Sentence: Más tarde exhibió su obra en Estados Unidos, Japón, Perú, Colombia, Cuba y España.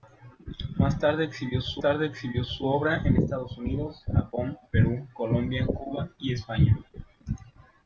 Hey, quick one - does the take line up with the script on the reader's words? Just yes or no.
no